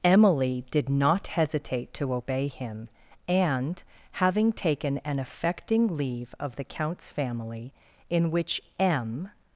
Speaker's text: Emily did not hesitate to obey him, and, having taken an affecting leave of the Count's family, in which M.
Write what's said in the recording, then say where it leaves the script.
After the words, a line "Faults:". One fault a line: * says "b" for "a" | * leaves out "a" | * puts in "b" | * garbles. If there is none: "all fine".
Emily did not hesitate to obey him, and, having taken an affecting leave of the Count's family, in which M.
Faults:
all fine